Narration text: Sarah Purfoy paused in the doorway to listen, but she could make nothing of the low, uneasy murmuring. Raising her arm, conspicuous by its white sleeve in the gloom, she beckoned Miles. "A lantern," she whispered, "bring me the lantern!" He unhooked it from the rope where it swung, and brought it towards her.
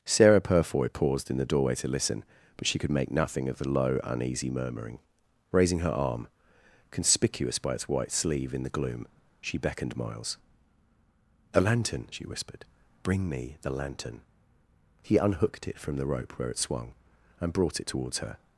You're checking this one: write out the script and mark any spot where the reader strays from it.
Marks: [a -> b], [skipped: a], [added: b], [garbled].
Sarah Purfoy paused in the doorway to listen, but she could make nothing of the low, uneasy murmuring. Raising her arm, conspicuous by its white sleeve in the gloom, she beckoned Miles. "A lantern," she whispered, "bring me the lantern!" He unhooked it from the rope where it swung, and brought it towards her.